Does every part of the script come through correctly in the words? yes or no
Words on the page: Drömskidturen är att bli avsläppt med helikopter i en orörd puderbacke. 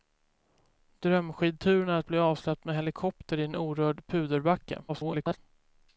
no